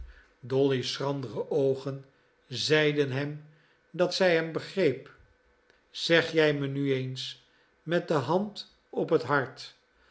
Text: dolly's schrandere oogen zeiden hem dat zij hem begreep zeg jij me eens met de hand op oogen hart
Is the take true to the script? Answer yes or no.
no